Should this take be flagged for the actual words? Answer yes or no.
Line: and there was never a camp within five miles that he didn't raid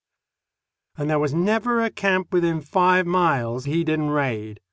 yes